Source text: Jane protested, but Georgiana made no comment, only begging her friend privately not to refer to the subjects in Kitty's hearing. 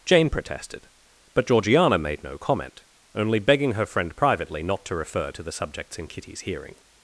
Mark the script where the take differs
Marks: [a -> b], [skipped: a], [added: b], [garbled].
Jane protested, but Georgiana made no comment, only begging her friend privately not to refer to the subjects in Kitty's hearing.